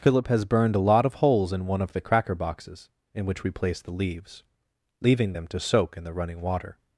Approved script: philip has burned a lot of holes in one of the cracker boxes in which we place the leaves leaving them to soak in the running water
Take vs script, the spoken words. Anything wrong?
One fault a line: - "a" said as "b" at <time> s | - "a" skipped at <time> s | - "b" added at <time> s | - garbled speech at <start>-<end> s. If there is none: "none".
none